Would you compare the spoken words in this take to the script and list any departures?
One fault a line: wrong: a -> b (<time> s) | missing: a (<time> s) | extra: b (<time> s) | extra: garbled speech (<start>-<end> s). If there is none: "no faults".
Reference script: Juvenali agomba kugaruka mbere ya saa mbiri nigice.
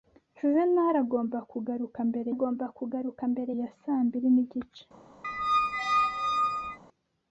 extra: agomba kugaruka mbere (2.3 s)